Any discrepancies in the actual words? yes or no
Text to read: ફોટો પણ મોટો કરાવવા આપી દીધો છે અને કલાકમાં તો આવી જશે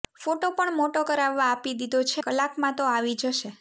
yes